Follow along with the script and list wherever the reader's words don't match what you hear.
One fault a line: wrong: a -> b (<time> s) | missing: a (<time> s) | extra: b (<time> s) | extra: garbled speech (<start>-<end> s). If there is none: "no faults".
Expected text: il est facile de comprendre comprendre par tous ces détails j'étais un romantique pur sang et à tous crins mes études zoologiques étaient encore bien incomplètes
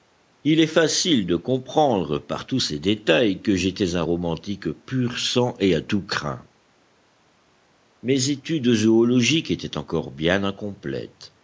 missing: comprendre (2.2 s)
extra: que (3.4 s)